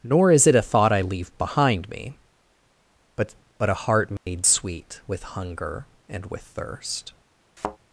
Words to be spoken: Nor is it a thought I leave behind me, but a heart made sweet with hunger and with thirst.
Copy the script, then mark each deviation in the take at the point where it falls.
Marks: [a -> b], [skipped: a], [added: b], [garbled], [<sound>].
Nor is it a thought I leave behind me, but [added: but] a heart made [dropout] sweet with hunger and with thirst. [thud]